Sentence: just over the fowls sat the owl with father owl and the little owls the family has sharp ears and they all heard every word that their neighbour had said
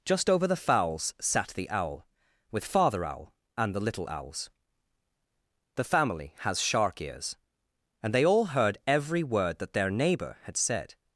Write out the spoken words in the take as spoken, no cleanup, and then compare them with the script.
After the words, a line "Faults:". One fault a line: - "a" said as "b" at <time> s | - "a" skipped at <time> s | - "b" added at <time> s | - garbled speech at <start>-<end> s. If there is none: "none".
just over the fowls sat the owl with father owl and the little owls the family has shark ears and they all heard every word that their neighbour had said
Faults:
- "sharp" said as "shark" at 6.6 s